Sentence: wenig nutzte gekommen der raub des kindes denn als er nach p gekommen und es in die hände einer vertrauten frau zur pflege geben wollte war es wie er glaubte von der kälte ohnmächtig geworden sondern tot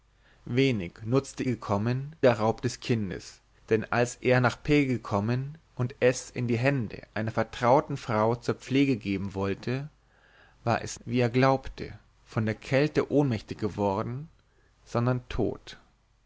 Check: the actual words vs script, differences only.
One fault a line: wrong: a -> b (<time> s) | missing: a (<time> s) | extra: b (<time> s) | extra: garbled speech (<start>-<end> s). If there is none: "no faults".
no faults